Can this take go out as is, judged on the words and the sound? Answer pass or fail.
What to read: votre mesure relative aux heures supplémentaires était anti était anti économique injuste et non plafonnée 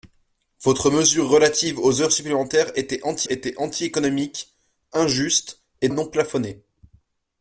pass